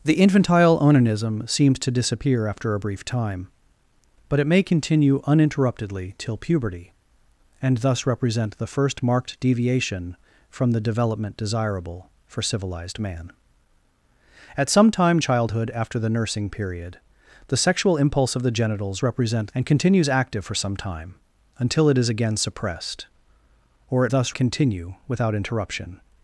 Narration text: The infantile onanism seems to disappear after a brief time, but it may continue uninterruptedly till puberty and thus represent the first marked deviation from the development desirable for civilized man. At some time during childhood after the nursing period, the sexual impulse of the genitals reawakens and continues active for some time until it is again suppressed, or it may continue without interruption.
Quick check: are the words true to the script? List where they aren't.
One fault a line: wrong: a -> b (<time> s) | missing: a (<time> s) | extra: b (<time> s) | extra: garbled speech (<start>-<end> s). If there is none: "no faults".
missing: during (15.2 s)
wrong: reawakens -> represent (19.0 s)
wrong: may -> thus (24.1 s)